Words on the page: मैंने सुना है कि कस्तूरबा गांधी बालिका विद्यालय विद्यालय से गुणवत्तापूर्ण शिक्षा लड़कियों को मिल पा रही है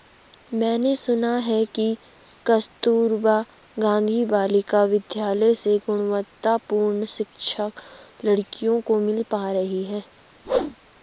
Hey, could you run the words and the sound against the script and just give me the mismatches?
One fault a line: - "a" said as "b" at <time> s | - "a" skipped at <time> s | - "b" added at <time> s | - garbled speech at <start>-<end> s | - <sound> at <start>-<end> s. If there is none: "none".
- "विद्यालय" skipped at 5.5 s
- whoosh at 10.4-10.8 s